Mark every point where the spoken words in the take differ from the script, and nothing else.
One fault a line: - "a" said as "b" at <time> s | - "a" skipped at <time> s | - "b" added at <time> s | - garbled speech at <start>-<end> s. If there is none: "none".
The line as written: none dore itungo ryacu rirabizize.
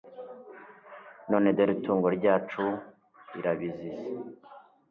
none